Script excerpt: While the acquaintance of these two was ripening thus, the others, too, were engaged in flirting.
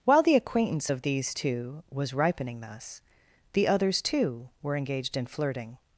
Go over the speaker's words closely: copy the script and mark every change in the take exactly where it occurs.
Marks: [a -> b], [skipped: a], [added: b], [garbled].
While the acquaintance of these two was ripening thus, the others, too, were engaged in flirting.